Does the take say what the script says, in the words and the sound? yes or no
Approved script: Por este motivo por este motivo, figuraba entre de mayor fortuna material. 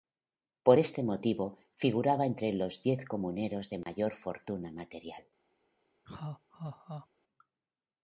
no